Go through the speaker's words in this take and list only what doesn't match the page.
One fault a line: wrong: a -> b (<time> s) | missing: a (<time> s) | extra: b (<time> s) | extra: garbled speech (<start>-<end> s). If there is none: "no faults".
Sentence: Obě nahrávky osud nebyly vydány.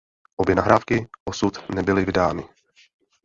no faults